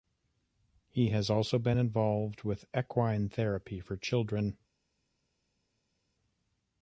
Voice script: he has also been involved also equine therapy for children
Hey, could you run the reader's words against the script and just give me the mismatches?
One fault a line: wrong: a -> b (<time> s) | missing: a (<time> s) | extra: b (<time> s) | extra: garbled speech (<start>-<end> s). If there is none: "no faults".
wrong: also -> with (2.4 s)